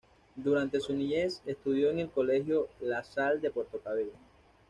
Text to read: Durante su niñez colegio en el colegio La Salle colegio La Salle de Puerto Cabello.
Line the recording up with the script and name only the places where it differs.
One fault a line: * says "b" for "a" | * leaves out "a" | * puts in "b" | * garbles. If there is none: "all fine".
* says "estudió" for "colegio"
* leaves out "colegio La Salle"